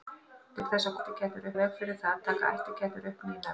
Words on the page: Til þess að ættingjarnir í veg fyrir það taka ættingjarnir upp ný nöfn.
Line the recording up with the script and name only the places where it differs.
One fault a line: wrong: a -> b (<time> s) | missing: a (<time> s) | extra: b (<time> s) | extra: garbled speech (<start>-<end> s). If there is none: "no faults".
no faults